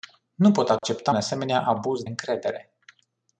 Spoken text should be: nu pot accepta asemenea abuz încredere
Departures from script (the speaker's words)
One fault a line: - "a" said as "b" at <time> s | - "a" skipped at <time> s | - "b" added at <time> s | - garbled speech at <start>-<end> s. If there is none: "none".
none